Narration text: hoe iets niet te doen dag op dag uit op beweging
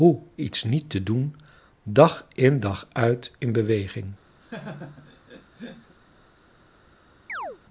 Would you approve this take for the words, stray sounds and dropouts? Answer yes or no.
no